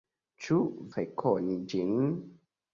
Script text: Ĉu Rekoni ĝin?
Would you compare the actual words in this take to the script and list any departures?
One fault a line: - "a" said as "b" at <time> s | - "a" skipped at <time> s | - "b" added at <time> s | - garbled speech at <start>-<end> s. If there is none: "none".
none